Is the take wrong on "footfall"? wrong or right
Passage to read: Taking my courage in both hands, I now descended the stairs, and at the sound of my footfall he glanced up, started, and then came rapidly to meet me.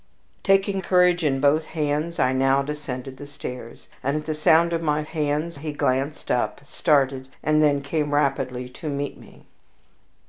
wrong